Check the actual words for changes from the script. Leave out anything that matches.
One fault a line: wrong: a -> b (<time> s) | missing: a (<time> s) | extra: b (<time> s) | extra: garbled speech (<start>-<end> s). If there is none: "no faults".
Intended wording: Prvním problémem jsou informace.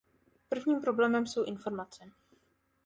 no faults